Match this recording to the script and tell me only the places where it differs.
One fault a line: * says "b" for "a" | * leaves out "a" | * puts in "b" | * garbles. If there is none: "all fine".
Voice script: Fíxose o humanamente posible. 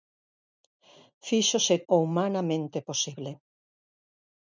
all fine